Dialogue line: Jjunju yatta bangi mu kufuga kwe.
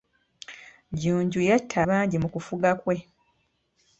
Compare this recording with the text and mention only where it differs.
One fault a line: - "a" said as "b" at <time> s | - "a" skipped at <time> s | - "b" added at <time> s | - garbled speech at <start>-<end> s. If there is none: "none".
none